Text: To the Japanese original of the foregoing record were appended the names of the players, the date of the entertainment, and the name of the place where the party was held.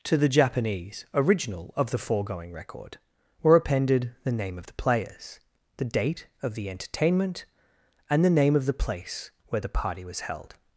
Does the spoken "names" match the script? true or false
false